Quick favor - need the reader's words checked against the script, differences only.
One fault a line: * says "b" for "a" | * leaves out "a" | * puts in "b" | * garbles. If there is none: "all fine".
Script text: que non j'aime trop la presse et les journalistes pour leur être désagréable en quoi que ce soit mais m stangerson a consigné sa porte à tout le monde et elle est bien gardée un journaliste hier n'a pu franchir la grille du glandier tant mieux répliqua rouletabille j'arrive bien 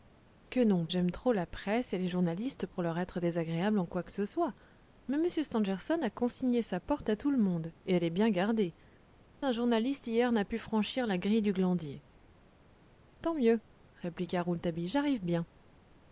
all fine